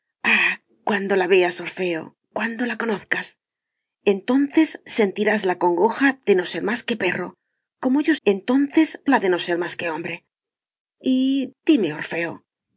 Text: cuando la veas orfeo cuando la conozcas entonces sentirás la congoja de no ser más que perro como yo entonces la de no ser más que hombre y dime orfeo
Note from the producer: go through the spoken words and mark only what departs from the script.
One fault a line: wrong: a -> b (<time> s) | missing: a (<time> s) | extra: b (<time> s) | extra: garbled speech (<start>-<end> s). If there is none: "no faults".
no faults